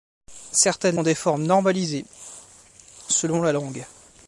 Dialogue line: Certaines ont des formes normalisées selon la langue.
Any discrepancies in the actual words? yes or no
no